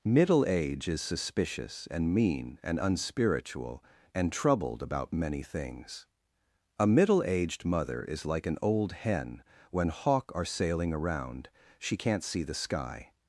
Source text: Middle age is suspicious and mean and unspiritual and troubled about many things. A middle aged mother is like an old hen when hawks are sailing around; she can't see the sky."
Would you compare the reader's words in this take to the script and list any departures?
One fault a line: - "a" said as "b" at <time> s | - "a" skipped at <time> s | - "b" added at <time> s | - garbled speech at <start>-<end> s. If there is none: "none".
- "hawks" said as "hawk" at 9.9 s